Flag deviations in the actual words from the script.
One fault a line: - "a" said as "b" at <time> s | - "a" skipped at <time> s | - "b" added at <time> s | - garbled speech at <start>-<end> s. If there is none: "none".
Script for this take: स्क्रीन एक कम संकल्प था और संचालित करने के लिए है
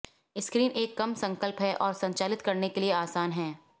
- "था" said as "है" at 1.6 s
- "आसान" added at 2.9 s